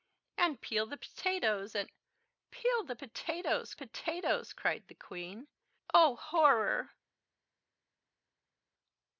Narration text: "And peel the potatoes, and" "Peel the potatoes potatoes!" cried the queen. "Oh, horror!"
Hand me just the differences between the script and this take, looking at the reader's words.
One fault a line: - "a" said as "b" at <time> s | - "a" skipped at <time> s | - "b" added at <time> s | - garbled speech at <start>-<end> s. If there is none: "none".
none